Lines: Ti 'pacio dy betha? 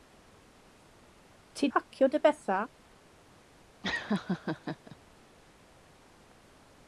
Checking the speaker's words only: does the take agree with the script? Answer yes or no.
yes